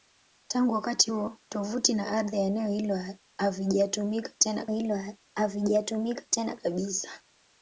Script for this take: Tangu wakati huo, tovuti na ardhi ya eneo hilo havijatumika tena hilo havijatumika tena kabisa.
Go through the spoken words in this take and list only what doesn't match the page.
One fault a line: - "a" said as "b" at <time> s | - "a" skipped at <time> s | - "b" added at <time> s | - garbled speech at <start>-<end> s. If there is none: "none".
none